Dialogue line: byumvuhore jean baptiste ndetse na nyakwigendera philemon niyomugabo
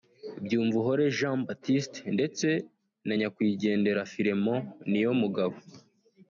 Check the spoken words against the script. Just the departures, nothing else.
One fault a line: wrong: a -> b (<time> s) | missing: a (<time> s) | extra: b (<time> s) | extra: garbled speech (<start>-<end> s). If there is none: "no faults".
no faults